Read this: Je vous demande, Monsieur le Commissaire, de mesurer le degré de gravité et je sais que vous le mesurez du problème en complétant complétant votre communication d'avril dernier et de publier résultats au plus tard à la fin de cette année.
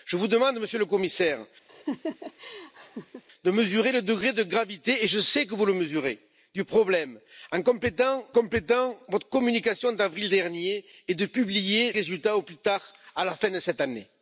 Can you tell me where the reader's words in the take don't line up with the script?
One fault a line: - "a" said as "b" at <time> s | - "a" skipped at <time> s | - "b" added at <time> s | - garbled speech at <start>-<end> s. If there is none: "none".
none